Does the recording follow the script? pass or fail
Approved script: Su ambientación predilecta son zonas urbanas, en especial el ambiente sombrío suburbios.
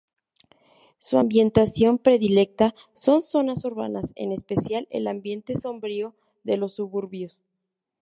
fail